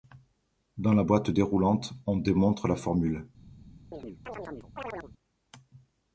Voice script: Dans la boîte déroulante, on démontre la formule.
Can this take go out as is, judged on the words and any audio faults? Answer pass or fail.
fail